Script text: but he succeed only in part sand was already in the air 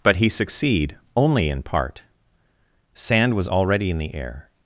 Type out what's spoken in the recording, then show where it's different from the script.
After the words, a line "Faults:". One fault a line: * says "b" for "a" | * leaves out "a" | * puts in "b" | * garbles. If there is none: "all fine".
but he succeed only in part sand was already in the air
Faults:
all fine